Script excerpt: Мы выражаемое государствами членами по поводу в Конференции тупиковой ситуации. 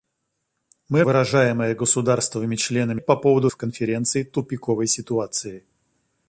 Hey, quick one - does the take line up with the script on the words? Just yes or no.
yes